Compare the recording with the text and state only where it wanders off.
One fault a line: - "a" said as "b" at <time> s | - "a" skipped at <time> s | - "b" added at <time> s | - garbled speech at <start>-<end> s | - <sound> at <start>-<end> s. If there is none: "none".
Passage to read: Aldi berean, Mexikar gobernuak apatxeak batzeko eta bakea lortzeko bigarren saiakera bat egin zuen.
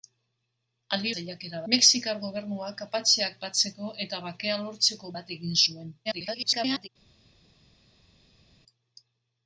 - "berean" said as "saiakera" at 1.1 s
- "bigarren saiakera" skipped at 5.1 s
- garbled speech at 6.1-6.9 s